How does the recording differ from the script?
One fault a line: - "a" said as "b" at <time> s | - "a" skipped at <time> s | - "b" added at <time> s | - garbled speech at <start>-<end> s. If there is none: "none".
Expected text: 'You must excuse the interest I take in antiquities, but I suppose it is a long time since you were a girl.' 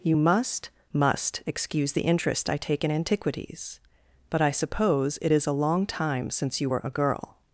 - "must" added at 0.9 s